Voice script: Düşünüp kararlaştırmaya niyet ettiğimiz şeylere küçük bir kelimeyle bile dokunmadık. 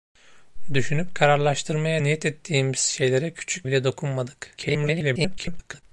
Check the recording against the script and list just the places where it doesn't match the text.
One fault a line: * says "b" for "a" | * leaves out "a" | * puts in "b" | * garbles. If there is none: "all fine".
* leaves out "bir kelimeyle"
* garbles